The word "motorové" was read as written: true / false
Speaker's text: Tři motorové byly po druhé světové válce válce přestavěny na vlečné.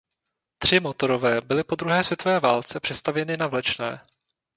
true